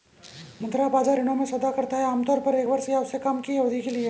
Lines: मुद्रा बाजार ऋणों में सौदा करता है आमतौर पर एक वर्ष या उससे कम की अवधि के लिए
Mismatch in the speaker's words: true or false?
false